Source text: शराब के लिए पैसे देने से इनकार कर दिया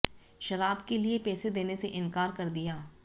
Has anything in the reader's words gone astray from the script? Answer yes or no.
no